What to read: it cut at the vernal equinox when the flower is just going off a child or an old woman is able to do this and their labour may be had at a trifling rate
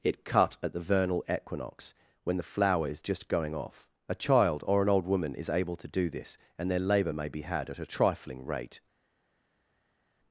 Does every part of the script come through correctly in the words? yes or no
yes